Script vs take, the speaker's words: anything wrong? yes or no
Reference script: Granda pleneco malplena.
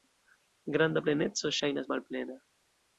yes